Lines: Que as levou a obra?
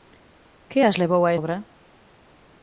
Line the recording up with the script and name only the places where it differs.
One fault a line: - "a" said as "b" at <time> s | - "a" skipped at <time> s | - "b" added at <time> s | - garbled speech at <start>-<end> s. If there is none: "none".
none